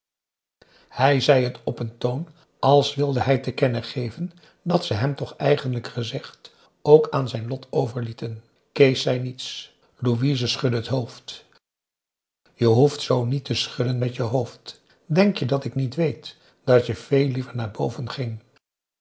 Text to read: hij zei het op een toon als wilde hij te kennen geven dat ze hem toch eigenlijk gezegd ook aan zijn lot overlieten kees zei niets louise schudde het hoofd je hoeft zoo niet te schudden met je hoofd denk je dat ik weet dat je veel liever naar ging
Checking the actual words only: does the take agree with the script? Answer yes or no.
no